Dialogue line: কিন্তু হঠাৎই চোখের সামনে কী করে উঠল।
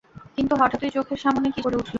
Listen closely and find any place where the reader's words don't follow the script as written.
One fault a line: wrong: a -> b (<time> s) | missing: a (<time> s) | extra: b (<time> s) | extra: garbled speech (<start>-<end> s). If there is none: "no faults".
no faults